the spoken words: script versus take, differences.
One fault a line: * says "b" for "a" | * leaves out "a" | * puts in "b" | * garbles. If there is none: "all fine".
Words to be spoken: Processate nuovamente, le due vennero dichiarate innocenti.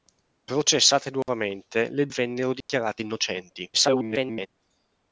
* leaves out "due"
* garbles